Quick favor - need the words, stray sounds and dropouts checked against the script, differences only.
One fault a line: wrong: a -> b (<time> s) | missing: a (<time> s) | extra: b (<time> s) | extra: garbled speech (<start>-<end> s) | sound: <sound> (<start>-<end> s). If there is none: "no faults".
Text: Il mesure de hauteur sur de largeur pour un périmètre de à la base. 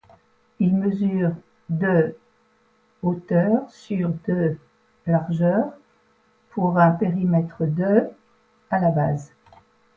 no faults